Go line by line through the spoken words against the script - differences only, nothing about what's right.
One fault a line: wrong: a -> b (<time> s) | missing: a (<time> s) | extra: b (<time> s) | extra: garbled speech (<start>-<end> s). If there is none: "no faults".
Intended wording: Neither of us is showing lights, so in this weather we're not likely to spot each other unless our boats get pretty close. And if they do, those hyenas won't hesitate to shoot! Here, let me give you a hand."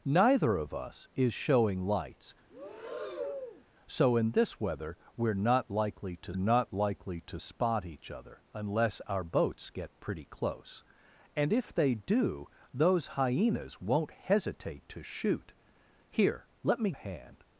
extra: not likely to (6.3 s)
missing: give you (16.9 s)